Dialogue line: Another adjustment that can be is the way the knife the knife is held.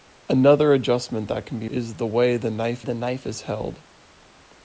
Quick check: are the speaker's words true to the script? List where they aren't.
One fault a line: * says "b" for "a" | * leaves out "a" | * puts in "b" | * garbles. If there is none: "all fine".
all fine